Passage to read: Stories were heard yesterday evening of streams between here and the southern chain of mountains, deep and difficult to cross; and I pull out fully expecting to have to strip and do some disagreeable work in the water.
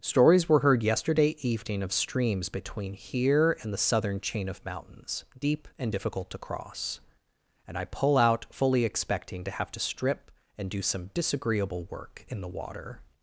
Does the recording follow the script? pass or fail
pass